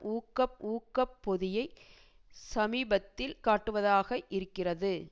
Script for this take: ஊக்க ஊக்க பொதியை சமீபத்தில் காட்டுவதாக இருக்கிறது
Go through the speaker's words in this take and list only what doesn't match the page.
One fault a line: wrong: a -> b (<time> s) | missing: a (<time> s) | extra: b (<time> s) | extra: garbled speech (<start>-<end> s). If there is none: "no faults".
no faults